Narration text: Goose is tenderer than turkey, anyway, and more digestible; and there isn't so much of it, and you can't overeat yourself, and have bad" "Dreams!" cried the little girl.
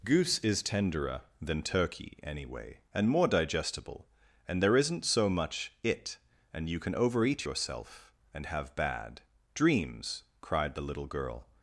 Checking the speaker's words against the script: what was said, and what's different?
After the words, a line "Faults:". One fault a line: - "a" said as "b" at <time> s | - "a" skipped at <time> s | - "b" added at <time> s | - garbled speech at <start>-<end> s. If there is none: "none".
Goose is tenderer than turkey, anyway, and more digestible; and there isn't so much it, and you can overeat yourself, and have bad" "Dreams!" cried the little girl.
Faults:
- "of" skipped at 5.7 s
- "can't" said as "can" at 6.8 s